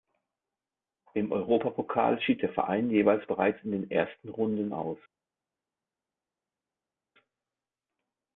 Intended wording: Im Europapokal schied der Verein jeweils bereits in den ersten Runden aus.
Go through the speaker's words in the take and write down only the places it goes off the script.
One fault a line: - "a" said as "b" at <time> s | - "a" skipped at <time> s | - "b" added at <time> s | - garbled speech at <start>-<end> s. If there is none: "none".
none